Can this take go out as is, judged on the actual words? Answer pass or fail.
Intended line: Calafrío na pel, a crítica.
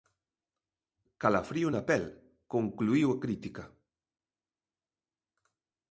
fail